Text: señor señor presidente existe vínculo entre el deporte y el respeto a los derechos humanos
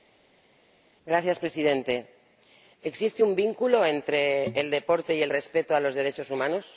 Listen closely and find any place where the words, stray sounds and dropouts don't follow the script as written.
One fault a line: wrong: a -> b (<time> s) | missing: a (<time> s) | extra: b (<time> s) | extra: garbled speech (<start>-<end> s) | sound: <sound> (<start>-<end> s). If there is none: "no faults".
missing: señor (1.4 s)
extra: un (3.2 s)